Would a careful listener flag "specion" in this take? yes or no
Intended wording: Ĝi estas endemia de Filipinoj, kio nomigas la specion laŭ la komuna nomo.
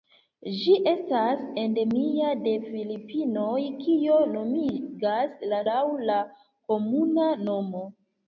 yes